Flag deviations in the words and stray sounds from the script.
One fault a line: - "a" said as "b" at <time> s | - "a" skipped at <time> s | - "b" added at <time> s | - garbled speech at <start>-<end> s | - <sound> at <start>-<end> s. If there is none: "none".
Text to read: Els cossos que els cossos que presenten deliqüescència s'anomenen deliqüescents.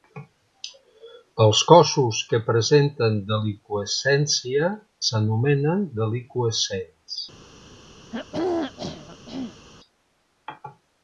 - "els cossos que" skipped at 2.4 s
- throat clearing at 8.1-9.7 s